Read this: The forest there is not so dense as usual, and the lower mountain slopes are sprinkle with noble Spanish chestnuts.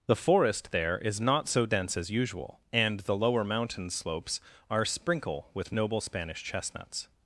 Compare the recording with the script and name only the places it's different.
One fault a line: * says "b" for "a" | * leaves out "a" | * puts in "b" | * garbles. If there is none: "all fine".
all fine